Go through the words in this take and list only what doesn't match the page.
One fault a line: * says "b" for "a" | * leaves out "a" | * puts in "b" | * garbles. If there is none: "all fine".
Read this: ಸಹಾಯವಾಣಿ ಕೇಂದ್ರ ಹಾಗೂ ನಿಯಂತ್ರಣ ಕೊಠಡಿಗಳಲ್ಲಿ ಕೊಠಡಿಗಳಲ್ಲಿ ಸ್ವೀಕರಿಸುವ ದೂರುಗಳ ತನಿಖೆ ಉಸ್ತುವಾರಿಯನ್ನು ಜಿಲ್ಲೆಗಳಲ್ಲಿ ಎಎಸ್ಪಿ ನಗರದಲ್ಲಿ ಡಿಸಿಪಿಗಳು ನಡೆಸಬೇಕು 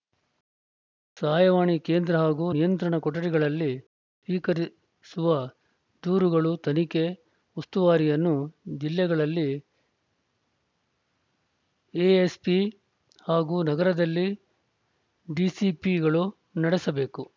* leaves out "ಕೊಠಡಿಗಳಲ್ಲಿ"
* puts in "ಹಾಗೂ"